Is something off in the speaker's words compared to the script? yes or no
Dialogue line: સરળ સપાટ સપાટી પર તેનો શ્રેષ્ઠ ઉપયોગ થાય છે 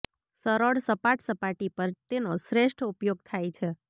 no